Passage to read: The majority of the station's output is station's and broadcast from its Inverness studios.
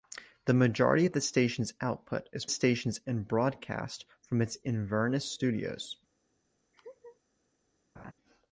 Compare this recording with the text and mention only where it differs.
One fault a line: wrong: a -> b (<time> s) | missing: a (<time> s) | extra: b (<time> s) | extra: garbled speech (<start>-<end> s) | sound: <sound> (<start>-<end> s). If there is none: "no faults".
sound: laugh (6.7-7.2 s)
sound: laugh (7.9-8.1 s)